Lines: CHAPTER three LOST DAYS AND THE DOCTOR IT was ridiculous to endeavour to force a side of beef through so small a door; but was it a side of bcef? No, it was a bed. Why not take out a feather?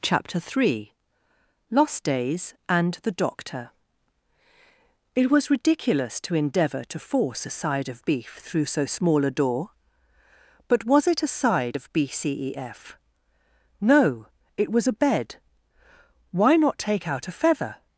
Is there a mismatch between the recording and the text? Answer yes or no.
no